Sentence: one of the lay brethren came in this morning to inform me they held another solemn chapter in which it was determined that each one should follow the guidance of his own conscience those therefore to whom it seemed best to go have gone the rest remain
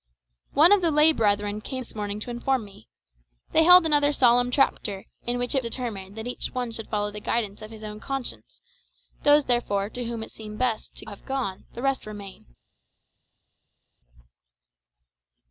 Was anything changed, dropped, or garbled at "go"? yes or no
yes